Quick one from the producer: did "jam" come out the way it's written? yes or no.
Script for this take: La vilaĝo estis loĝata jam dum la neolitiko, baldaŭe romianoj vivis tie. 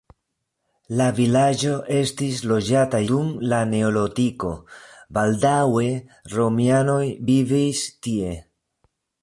no